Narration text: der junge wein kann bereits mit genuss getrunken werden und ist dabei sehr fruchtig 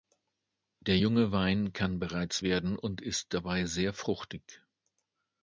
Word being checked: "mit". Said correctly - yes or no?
no